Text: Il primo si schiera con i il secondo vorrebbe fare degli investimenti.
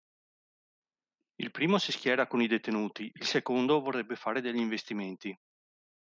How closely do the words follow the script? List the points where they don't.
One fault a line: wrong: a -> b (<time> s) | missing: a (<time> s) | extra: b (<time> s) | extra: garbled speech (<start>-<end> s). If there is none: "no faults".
extra: detenuti (2.5 s)